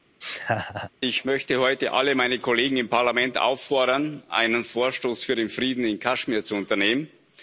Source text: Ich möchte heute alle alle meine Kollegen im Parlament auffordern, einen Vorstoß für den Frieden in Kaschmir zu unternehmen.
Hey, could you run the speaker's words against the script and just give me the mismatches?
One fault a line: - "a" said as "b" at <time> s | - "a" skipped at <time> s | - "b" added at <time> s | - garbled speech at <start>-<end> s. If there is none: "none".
- "alle" skipped at 2.2 s